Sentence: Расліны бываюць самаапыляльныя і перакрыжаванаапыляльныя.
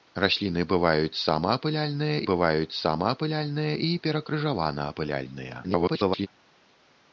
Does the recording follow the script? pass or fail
fail